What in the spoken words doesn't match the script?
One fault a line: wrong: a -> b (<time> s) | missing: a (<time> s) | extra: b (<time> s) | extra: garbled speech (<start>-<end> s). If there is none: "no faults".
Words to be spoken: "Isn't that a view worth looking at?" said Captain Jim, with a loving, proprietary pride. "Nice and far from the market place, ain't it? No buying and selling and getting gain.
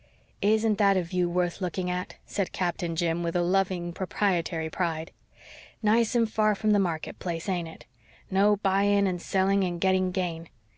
no faults